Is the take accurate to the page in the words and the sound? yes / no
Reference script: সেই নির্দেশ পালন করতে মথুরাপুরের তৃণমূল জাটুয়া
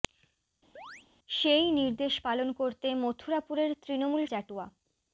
no